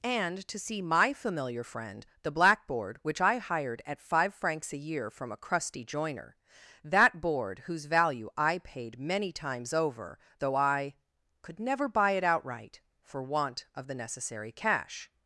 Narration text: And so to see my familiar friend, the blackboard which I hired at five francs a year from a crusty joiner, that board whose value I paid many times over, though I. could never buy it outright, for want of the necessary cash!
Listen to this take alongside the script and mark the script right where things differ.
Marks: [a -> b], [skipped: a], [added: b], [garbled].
And [skipped: so] to see my familiar friend, the blackboard which I hired at five francs a year from a crusty joiner, that board whose value I paid many times over, though I. could never buy it outright, for want of the necessary cash!